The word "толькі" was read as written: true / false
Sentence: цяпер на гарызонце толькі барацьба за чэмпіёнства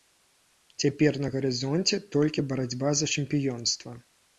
true